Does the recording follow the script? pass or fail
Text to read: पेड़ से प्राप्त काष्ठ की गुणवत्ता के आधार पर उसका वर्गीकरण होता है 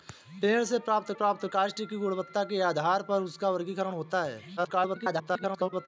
fail